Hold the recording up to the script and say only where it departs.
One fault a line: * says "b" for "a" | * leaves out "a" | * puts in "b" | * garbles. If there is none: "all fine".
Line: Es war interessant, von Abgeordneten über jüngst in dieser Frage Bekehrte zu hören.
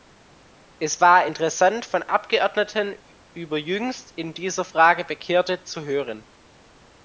all fine